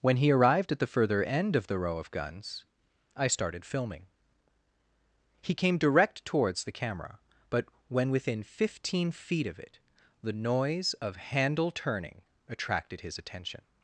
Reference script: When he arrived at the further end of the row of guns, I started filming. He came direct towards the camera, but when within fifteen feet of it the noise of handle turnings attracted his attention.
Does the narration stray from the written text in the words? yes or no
yes